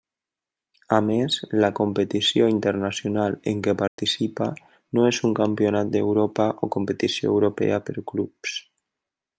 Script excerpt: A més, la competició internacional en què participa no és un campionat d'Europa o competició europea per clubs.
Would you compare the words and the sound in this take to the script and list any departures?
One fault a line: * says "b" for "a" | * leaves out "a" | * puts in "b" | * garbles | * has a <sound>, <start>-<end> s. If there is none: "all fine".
* has a dropout, 3.9-4.0 s